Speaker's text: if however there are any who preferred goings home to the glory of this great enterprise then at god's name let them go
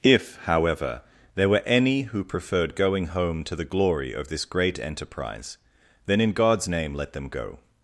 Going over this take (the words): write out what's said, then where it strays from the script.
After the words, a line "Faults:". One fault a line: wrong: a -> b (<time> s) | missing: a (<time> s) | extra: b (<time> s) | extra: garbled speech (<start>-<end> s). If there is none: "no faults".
if however there were any who preferred going home to the glory of this great enterprise then in god's name let them go
Faults:
wrong: are -> were (1.5 s)
wrong: goings -> going (2.8 s)
wrong: at -> in (6.2 s)